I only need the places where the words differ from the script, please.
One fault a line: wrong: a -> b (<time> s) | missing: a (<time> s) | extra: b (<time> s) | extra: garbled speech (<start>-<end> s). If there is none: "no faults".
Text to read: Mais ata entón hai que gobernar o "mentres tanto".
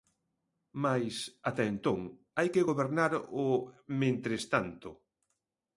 no faults